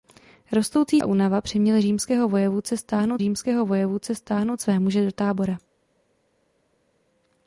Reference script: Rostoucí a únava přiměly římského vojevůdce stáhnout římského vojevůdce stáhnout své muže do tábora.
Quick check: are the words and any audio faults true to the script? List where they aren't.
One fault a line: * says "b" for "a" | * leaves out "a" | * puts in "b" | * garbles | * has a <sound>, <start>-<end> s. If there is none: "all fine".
all fine